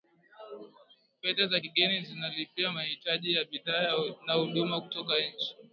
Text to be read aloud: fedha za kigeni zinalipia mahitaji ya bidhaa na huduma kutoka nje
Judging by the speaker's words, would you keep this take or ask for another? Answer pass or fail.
pass